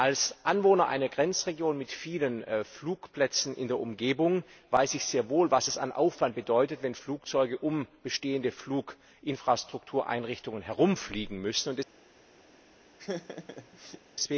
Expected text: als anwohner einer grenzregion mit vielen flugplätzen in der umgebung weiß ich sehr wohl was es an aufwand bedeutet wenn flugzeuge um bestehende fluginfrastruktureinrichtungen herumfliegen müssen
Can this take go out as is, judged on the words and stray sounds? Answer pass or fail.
fail